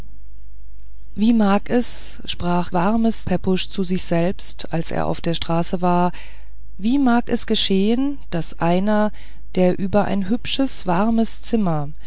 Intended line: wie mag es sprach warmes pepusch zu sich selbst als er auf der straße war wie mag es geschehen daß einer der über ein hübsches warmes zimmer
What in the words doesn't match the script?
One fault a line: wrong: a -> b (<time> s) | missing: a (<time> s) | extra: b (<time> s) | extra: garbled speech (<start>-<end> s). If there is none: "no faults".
no faults